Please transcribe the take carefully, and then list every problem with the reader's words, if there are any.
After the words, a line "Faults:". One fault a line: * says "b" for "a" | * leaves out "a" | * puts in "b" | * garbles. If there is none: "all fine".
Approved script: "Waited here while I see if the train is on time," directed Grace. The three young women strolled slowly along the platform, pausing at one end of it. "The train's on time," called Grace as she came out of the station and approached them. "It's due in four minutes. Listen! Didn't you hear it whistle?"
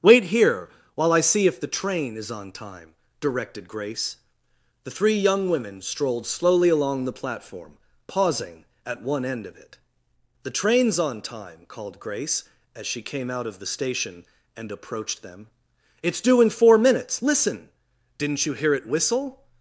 "Wait here while I see if the train is on time," directed Grace. The three young women strolled slowly along the platform, pausing at one end of it. "The train's on time," called Grace as she came out of the station and approached them. "It's due in four minutes. Listen! Didn't you hear it whistle?"
Faults:
* says "Wait" for "Waited"